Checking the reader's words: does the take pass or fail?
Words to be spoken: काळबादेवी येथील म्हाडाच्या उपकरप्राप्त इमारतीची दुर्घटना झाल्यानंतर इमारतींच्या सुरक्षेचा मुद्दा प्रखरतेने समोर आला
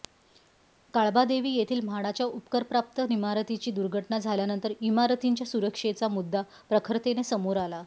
pass